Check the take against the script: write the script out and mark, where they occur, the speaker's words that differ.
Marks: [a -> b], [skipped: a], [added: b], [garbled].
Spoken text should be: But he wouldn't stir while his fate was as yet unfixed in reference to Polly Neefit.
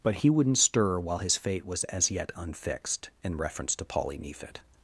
But he wouldn't stir while his fate was as yet unfixed in reference to Polly Neefit.